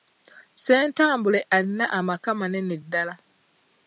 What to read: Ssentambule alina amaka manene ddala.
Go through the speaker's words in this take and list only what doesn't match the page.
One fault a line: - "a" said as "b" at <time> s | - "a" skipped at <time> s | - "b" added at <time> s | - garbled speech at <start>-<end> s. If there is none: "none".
none